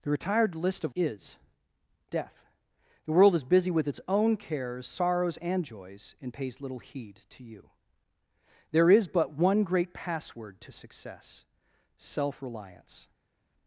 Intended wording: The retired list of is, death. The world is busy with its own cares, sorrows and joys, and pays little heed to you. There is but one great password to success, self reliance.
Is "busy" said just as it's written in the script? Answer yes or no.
yes